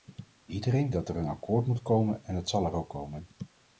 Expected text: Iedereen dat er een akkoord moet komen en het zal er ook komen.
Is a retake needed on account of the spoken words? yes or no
no